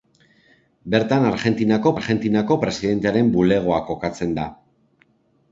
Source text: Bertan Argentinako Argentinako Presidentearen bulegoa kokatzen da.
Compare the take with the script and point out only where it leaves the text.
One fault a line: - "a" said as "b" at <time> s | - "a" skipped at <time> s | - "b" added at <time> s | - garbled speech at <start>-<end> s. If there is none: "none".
none